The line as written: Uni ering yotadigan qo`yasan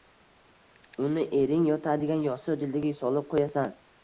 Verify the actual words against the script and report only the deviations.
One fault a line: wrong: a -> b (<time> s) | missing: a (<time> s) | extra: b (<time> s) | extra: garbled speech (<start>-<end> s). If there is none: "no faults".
extra: yostiq jildiga solib (2.3 s)